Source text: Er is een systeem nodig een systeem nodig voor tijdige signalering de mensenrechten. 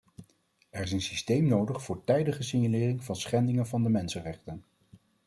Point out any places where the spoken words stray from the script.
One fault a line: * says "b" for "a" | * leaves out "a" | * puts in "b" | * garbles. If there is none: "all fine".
* says "voor tijdige signalering van schendingen van" for "een systeem nodig voor tijdige signalering"